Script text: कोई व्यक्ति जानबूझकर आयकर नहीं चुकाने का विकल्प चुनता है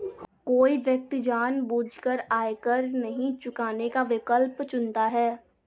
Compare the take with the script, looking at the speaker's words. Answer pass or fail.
pass